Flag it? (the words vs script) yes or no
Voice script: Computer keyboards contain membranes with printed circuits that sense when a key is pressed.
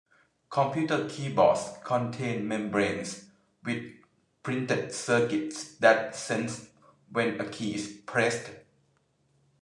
no